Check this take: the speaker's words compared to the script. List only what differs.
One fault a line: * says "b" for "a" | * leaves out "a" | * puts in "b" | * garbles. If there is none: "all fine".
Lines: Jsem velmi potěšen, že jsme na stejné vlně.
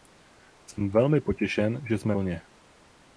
* leaves out "na stejné"